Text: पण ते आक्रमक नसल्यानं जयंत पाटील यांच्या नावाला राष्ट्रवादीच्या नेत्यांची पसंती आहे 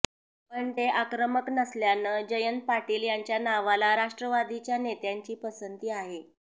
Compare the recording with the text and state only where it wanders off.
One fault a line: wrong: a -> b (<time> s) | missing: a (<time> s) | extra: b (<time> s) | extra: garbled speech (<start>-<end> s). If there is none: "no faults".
no faults